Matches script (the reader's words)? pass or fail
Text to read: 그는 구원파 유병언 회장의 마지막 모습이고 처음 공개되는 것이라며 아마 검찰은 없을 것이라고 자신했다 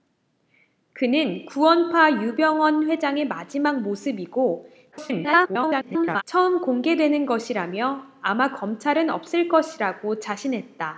fail